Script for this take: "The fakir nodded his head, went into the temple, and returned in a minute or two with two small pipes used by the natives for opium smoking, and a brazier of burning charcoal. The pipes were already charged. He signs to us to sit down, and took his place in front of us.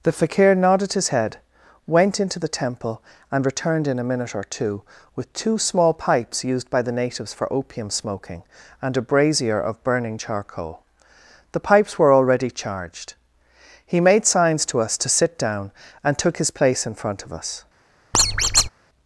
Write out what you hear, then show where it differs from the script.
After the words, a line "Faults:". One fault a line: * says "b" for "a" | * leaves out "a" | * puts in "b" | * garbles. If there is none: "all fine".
"The fakir nodded his head, went into the temple, and returned in a minute or two with two small pipes used by the natives for opium smoking, and a brazier of burning charcoal. The pipes were already charged. He made signs to us to sit down, and took his place in front of us.
Faults:
* puts in "made"